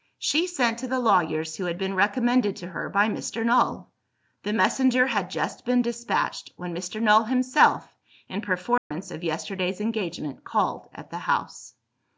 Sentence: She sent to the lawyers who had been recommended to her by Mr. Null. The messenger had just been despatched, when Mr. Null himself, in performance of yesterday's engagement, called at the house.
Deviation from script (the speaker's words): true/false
false